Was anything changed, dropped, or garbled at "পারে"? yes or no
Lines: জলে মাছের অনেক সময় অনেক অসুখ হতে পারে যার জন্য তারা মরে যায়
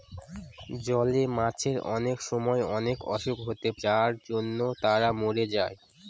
yes